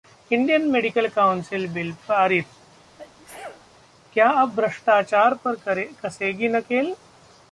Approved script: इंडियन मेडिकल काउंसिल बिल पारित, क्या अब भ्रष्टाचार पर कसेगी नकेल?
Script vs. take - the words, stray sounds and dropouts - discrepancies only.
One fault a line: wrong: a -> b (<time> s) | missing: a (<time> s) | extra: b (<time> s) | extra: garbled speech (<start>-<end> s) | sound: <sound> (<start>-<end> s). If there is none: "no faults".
sound: sneeze (3.0-3.7 s)